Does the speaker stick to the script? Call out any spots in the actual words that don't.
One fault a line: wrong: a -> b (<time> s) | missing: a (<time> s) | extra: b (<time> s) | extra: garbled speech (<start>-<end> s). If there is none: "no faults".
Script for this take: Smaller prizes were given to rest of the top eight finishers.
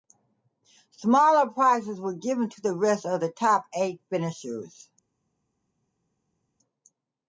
extra: the (2.6 s)